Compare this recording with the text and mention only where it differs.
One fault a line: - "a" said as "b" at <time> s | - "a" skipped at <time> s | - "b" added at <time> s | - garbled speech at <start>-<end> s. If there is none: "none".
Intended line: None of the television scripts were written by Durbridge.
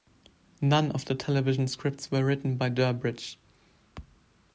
none